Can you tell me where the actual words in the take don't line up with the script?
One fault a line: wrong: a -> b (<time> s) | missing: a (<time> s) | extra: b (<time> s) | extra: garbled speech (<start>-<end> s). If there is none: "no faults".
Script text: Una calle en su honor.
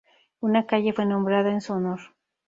extra: fue nombrada (0.9 s)